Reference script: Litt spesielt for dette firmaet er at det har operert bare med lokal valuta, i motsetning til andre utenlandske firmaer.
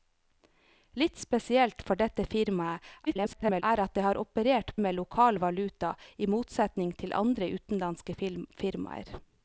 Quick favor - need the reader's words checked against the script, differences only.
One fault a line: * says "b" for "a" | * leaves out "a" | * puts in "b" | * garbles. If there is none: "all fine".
* garbles
* leaves out "bare"